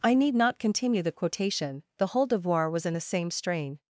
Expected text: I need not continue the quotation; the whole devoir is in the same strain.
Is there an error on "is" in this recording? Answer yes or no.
yes